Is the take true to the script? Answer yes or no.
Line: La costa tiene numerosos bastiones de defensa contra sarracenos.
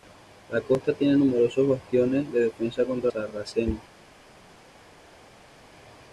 yes